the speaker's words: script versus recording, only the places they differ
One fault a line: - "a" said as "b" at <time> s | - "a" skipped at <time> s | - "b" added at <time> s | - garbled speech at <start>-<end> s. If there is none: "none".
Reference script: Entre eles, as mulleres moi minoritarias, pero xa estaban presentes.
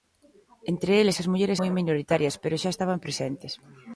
none